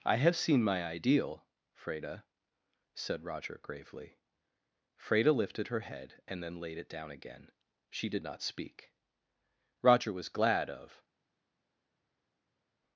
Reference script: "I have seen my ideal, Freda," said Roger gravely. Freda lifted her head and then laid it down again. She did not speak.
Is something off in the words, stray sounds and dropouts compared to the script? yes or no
yes